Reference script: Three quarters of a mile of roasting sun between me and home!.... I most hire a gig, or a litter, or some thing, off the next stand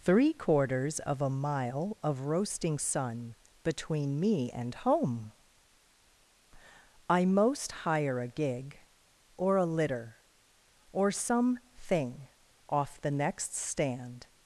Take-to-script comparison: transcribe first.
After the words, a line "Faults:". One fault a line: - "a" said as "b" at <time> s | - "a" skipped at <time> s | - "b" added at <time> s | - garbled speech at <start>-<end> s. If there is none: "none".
Three quarters of a mile of roasting sun between me and home!.... I most hire a gig, or a litter, or some thing, off the next stand
Faults:
none